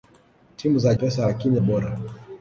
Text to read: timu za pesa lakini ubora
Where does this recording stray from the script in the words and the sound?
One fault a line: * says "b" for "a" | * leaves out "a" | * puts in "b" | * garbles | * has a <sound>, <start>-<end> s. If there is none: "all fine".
all fine